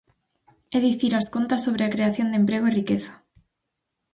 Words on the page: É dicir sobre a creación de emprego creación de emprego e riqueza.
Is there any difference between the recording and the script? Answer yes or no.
yes